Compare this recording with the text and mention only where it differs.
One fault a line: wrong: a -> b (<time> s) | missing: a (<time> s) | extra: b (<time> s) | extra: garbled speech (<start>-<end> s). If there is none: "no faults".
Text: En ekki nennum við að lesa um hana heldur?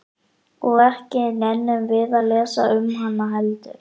wrong: En -> Og (0.7 s)